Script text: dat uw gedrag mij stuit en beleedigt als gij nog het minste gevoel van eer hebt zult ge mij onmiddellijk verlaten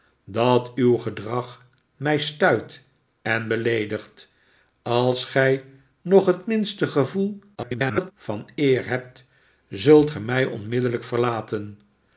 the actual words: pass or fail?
fail